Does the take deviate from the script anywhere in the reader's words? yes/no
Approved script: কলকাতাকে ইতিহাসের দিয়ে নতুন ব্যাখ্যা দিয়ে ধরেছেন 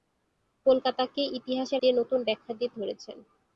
no